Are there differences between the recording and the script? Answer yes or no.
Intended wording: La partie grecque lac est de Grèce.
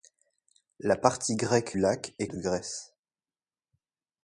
no